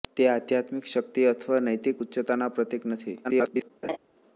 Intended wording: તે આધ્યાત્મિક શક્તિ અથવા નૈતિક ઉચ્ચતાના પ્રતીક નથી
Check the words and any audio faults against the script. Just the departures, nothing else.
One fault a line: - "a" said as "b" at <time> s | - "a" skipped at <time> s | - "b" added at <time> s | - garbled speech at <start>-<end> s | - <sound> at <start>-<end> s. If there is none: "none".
- garbled speech at 3.2-3.7 s
- laugh at 3.8-4.0 s